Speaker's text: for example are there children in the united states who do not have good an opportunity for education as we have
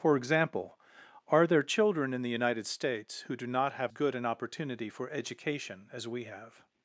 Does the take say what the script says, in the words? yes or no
yes